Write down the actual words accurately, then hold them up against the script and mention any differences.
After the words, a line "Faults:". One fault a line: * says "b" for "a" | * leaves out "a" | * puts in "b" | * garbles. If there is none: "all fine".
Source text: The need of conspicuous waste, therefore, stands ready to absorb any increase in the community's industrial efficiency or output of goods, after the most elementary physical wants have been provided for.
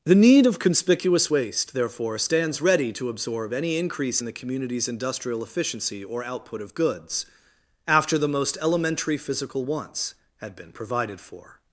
The need of conspicuous waste, therefore, stands ready to absorb any increase in the community's industrial efficiency or output of goods, after the most elementary physical wants had been provided for.
Faults:
* says "had" for "have"